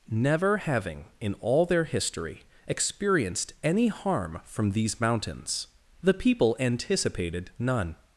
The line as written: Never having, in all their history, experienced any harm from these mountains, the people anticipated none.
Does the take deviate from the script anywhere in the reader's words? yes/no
no